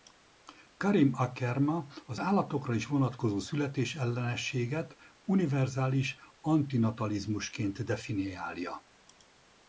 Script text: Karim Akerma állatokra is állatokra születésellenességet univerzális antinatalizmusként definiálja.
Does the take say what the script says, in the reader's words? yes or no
no